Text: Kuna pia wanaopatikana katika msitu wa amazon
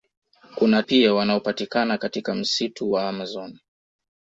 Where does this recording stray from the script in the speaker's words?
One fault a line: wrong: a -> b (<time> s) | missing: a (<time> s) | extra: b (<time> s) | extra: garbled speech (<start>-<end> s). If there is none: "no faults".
no faults